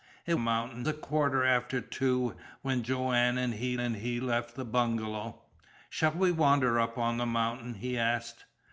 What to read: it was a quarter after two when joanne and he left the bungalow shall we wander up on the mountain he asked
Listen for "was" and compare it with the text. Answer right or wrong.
wrong